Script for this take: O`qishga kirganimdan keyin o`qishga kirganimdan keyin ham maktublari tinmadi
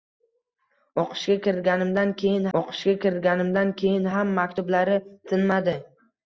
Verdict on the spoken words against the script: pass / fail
pass